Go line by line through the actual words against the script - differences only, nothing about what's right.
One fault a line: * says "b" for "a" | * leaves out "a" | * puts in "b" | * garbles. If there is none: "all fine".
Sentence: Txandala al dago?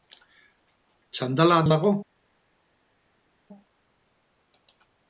all fine